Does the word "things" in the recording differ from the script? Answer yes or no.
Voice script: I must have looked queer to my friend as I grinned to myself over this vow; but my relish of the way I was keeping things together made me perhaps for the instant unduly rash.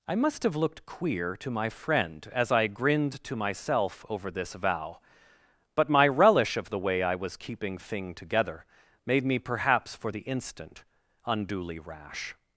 yes